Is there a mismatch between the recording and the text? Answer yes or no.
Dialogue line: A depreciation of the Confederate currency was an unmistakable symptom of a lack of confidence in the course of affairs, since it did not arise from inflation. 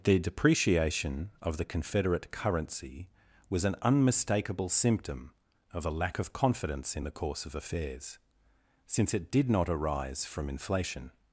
yes